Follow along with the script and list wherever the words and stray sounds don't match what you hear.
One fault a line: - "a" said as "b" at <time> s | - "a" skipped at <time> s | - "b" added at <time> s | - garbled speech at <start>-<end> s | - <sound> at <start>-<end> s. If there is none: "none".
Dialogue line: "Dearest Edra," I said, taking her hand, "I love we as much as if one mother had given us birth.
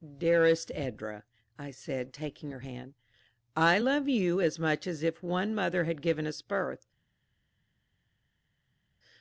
- "we" said as "you" at 4.1 s